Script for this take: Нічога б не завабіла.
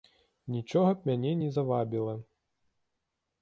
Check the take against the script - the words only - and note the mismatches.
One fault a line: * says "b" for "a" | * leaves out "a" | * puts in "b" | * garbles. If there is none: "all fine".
* puts in "мяне"